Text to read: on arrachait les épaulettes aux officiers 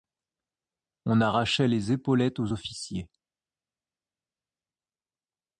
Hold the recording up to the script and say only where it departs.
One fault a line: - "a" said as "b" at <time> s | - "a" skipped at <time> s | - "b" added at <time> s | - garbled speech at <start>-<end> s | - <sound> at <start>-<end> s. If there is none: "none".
none